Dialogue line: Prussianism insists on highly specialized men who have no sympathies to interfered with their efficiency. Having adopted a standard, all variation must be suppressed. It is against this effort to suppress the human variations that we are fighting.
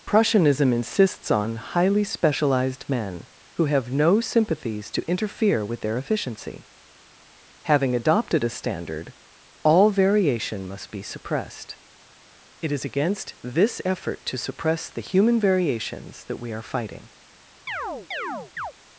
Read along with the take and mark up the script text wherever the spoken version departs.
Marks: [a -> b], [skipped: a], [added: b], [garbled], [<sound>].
Prussianism insists on highly specialized men who have no sympathies to [interfered -> interfere] with their efficiency. Having adopted a standard, all variation must be suppressed. It is against this effort to suppress the human variations that we are fighting. [chirp]